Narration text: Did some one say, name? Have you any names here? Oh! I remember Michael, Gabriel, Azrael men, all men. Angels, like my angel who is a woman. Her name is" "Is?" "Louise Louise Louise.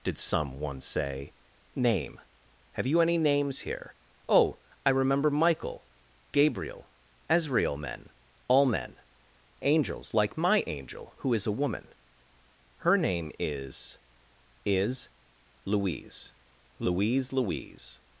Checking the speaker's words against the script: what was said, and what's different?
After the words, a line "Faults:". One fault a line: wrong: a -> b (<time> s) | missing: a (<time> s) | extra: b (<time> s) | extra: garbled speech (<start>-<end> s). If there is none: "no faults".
Did some one say, name? Have you any names here? Oh! I remember Michael, Gabriel, Azrael men, all men. Angels, like my angel who is a woman. Her name is" "Is?" "Louise Louise Louise.
Faults:
no faults